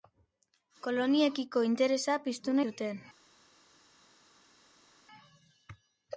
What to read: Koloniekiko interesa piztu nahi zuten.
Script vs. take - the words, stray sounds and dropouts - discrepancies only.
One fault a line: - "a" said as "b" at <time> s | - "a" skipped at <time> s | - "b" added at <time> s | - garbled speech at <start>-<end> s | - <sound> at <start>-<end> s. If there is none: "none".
- "nahi" skipped at 2.6 s